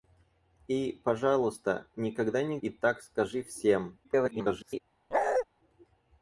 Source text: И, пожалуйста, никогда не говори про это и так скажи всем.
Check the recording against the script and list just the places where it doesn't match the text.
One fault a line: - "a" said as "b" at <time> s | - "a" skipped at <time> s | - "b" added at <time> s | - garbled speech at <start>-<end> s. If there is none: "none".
- "говори про это" skipped at 2.6 s
- garbled speech at 4.0-4.8 s